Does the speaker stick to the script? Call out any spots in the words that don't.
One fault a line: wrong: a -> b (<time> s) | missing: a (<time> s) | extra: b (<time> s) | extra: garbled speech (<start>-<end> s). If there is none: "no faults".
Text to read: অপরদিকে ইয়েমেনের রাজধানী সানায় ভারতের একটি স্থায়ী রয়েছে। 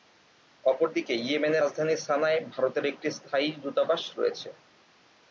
extra: দূতাবাস (3.6 s)